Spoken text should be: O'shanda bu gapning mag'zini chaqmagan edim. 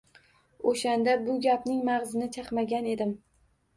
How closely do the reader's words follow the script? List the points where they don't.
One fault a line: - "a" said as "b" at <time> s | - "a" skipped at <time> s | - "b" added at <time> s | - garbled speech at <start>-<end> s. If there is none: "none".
none